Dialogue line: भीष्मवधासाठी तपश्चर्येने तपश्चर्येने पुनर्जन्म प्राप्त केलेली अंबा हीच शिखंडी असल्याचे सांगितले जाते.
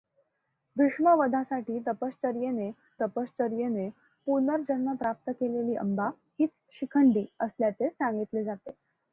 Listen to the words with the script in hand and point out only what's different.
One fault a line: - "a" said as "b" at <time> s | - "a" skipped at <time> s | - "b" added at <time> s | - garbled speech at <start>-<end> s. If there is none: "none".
none